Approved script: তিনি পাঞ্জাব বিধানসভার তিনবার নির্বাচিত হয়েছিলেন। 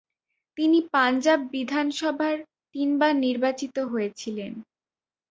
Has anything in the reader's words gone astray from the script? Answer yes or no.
no